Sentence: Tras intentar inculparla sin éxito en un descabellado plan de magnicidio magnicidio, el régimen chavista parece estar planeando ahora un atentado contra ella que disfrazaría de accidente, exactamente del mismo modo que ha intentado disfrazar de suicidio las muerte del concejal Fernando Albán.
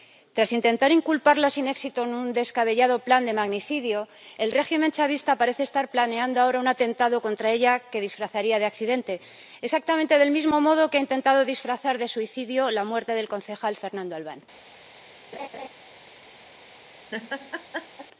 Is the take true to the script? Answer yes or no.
no